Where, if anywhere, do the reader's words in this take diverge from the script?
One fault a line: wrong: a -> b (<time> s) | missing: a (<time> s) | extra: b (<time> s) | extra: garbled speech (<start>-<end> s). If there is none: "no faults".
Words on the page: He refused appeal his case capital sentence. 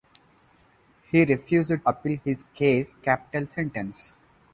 no faults